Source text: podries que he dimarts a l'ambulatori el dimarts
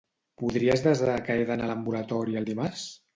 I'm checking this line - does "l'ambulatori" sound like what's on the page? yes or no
yes